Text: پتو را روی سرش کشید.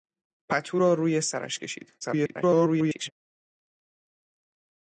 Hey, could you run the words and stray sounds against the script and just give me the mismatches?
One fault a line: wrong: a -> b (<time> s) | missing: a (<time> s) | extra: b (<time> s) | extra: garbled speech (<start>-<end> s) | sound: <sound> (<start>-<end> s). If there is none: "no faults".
extra: garbled speech (2.0-3.1 s)